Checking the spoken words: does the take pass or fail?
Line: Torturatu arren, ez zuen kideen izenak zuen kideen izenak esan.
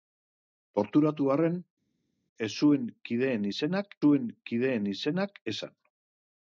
pass